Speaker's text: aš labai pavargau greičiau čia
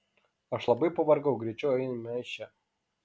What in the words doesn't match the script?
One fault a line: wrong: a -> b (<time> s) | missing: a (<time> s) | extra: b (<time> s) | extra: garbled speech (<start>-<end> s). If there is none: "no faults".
extra: eime iš (1.9 s)